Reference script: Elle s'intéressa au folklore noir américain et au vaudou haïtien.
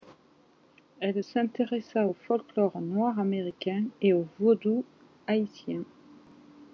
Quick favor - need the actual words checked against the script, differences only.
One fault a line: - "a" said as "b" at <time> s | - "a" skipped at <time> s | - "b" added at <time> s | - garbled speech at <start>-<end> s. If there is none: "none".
none